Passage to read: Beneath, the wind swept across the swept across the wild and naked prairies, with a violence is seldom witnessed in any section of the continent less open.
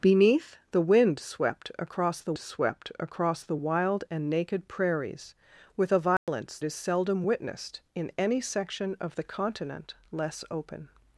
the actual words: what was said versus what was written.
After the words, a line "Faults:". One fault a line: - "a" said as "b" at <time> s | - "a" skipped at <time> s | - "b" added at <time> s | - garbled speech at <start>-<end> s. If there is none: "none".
Beneath, the wind swept across the swept across the wild and naked prairies, with a violence is seldom witnessed in any section of the continent less open.
Faults:
none